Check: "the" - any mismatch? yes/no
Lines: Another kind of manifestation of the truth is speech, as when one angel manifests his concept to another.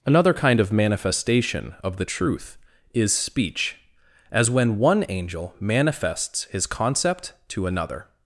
no